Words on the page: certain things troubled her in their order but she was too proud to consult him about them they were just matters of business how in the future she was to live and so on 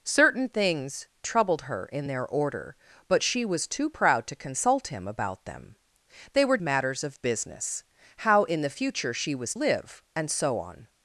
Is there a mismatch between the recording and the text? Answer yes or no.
yes